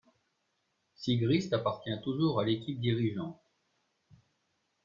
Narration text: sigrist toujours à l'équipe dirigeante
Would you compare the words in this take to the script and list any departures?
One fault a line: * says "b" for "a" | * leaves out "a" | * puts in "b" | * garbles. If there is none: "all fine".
* puts in "appartient"